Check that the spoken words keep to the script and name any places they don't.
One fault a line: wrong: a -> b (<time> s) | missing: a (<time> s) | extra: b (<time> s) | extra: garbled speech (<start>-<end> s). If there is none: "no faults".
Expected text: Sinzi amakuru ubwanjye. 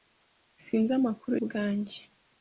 no faults